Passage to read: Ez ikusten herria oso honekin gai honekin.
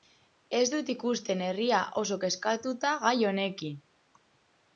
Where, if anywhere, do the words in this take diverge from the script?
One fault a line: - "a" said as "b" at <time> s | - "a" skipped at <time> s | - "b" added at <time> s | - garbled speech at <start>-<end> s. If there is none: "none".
- "dut" added at 0.8 s
- "honekin" said as "kezkatuta" at 2.3 s